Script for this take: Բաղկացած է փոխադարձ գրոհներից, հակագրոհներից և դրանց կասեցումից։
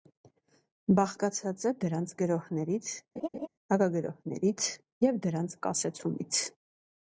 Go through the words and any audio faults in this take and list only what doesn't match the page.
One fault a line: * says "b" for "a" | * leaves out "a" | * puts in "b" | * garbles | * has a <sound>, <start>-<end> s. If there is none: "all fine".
* says "դրանց" for "փոխադարձ"
* has a laugh, 3.2-3.5 s